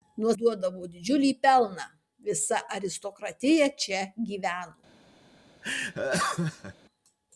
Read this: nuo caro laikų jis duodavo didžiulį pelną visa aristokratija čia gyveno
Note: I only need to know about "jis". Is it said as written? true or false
false